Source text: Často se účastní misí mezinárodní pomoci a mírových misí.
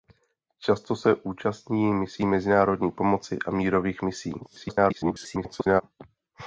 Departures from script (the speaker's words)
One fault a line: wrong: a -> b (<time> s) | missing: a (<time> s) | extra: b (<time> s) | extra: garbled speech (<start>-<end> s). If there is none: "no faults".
extra: garbled speech (4.4-5.8 s)